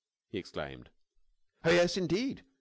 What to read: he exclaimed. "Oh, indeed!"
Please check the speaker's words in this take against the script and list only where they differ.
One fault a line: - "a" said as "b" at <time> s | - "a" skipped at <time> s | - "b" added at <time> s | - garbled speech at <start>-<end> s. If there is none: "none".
- "yes" added at 1.7 s